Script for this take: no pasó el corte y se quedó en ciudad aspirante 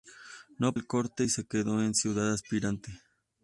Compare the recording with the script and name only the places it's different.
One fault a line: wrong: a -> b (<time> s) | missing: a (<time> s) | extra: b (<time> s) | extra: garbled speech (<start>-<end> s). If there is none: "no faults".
missing: pasó (0.7 s)